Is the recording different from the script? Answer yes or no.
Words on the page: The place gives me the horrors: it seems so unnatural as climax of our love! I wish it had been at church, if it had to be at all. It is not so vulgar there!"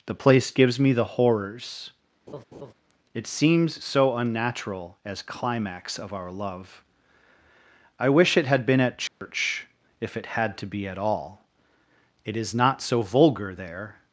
no